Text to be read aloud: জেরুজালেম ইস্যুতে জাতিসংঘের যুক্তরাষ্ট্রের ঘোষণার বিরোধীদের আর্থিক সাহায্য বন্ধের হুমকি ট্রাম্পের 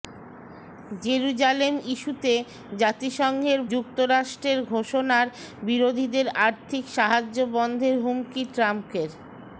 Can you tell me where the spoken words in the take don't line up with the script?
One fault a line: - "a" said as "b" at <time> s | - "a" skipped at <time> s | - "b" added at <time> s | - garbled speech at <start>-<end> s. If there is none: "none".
none